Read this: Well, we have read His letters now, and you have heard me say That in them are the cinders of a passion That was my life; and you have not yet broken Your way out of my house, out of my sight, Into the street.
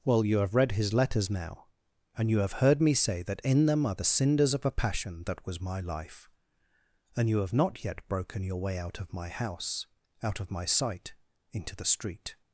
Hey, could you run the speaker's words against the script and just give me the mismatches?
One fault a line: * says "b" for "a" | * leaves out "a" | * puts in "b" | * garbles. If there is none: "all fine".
* says "you" for "we"